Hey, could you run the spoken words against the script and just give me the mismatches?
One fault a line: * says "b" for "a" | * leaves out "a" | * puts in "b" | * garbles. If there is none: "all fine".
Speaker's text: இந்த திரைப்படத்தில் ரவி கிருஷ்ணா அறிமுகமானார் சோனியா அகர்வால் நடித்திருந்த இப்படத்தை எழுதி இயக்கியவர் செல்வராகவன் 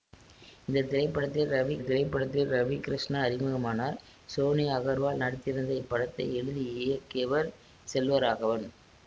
* puts in "திரைப்படத்தில் ரவி"